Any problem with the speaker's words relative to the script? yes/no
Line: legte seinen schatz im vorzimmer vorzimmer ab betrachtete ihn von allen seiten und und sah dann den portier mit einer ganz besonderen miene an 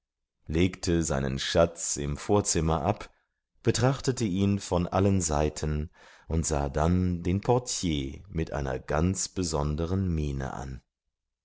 yes